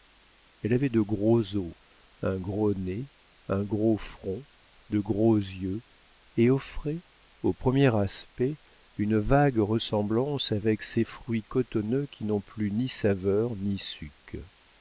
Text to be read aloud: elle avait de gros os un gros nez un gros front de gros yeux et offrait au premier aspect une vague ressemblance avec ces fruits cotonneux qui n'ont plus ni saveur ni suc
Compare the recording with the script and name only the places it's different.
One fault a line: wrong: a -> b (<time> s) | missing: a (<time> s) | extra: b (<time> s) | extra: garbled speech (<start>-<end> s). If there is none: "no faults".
no faults